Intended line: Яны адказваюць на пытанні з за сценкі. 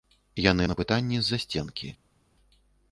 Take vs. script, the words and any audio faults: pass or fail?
fail